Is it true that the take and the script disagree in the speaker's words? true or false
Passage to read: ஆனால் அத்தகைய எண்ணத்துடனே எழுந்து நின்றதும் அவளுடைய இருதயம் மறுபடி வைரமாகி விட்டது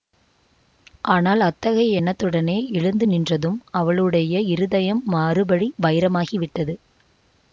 false